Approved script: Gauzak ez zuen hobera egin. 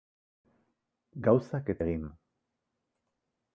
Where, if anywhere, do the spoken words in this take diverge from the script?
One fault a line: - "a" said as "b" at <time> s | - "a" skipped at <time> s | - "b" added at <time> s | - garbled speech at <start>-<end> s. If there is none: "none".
- "zuen hobera" skipped at 1.8 s